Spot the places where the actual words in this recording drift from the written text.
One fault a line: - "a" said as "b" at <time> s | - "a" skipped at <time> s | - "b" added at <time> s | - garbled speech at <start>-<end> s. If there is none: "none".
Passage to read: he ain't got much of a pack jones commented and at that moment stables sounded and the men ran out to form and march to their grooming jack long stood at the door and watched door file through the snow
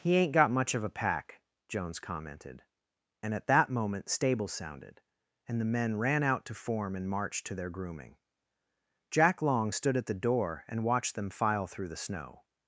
- "door" said as "them" at 11.2 s